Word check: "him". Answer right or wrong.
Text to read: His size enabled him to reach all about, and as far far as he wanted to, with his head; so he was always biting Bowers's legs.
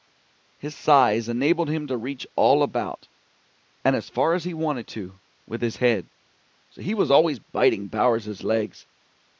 right